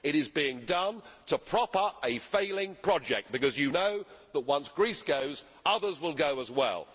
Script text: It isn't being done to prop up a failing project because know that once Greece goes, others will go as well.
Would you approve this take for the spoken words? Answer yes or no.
no